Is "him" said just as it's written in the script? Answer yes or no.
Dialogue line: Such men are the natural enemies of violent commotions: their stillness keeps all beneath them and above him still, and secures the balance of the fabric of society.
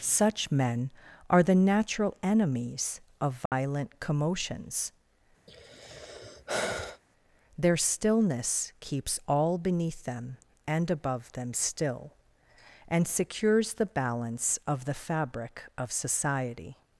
no